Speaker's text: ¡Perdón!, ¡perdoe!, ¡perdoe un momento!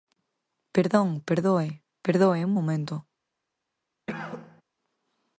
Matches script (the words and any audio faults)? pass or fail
fail